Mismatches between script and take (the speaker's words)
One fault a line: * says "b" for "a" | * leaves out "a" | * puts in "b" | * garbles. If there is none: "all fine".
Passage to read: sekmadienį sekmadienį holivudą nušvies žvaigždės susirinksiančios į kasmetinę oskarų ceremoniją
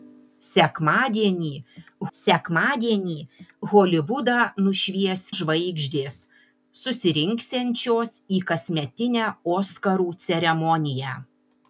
all fine